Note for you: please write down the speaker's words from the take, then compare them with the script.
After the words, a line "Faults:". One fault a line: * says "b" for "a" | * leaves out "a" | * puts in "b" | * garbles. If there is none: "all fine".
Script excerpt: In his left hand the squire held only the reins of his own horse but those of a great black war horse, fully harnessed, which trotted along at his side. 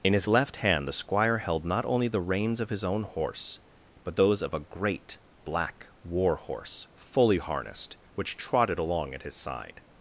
In his left hand the squire held not only the reins of his own horse but those of a great black war horse, fully harnessed, which trotted along at his side.
Faults:
* puts in "not"